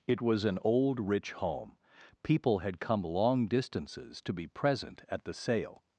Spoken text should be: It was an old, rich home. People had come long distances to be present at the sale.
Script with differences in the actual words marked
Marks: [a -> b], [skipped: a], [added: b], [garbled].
It was an old, rich home. People had come long distances to be present at the sale.